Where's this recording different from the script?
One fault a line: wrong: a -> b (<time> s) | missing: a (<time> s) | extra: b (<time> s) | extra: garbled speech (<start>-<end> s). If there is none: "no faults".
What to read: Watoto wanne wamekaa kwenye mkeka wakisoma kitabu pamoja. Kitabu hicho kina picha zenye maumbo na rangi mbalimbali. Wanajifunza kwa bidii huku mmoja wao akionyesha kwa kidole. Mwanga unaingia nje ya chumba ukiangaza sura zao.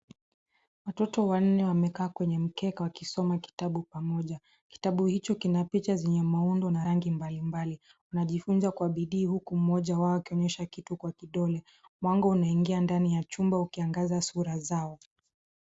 extra: kitu (10.6 s)
wrong: nje -> ndani (12.8 s)